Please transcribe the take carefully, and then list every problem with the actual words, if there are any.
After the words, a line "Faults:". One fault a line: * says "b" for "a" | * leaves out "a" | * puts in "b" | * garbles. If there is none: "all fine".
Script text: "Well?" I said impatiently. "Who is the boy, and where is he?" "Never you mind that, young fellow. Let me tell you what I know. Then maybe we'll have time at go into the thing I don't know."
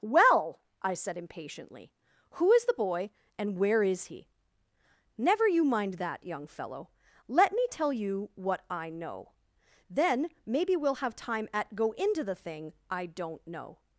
"Well?" I said impatiently. "Who is the boy, and where is he?" "Never you mind that, young fellow. Let me tell you what I know. Then maybe we'll have time at go into the thing I don't know."
Faults:
all fine